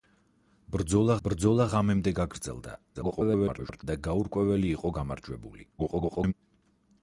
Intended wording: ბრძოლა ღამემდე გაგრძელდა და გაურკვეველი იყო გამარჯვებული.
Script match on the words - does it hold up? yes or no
no